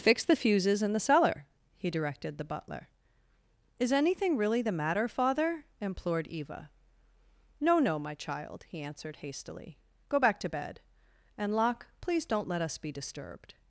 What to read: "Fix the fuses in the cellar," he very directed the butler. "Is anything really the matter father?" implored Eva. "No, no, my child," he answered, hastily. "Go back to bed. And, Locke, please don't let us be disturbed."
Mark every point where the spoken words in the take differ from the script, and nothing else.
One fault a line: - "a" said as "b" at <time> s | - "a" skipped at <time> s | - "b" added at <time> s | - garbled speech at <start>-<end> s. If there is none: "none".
- "very" skipped at 1.9 s